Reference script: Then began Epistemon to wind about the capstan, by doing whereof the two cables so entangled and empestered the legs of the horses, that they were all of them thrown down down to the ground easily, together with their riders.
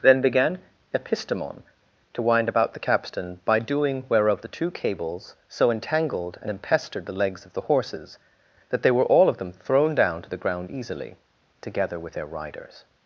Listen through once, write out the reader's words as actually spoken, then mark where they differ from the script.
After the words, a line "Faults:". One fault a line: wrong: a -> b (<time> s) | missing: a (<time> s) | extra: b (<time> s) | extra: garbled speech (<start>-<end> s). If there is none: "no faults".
Then began Epistemon to wind about the capstan, by doing whereof the two cables so entangled and empestered the legs of the horses, that they were all of them thrown down to the ground easily, together with their riders.
Faults:
missing: down (10.2 s)